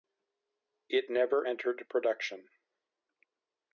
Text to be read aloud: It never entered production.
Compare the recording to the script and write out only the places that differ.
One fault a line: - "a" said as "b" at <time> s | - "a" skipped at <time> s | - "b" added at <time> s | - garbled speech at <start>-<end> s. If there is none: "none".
none